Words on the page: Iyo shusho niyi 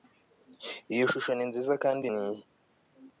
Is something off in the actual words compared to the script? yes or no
yes